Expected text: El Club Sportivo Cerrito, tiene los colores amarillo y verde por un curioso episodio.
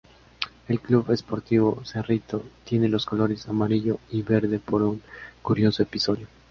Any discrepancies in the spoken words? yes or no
no